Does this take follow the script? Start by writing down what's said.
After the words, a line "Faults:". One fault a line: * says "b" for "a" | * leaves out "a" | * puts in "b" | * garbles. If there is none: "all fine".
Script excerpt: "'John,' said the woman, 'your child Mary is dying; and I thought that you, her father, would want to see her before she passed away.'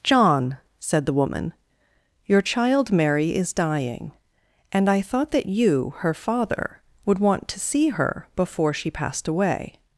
"'John,' said the woman, 'your child Mary is dying; and I thought that you, her father, would want to see her before she passed away.'
Faults:
all fine